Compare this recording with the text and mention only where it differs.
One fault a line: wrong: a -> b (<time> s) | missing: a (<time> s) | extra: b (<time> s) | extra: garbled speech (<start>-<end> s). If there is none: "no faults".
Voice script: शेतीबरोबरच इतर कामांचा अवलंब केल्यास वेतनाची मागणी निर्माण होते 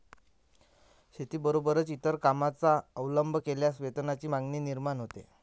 no faults